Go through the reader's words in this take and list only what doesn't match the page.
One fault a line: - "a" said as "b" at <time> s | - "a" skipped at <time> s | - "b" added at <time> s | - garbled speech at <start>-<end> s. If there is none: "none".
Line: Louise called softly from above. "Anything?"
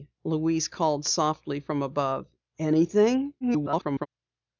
- garbled speech at 3.4-4.1 s